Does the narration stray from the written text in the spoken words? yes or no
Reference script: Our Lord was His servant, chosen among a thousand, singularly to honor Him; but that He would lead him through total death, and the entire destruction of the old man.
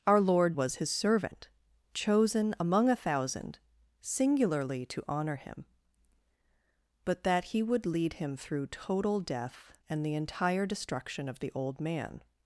no